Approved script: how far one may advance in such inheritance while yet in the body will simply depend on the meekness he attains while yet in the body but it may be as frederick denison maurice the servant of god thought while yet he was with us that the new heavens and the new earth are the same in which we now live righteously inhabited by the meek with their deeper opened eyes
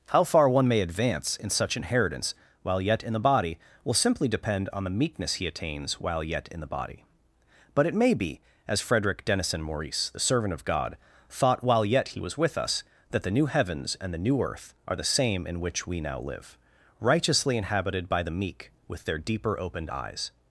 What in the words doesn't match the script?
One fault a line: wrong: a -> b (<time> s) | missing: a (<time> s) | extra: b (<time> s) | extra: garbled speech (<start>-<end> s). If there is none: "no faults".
no faults